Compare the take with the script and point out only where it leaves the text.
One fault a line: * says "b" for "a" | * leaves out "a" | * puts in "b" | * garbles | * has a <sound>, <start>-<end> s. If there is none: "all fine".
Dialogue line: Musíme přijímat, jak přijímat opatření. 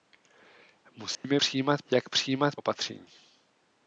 * has a dropout, 1.1-1.2 s